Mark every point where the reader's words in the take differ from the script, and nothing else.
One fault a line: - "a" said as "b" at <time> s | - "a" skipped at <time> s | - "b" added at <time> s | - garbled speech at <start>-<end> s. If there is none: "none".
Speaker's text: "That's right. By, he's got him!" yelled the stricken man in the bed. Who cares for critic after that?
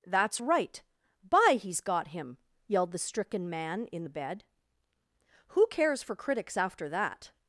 - "critic" said as "critics" at 6.2 s